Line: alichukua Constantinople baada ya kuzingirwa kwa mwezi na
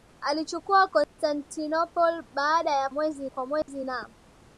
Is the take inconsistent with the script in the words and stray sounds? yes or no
yes